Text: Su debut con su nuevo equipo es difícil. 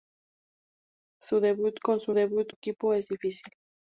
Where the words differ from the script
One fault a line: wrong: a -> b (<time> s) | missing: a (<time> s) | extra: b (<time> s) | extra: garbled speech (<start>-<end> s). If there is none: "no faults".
wrong: nuevo -> debut (2.1 s)